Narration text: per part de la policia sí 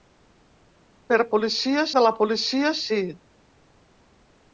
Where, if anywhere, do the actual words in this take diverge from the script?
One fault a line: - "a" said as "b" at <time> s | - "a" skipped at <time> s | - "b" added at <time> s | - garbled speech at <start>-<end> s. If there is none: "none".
- "part" said as "policia" at 1.3 s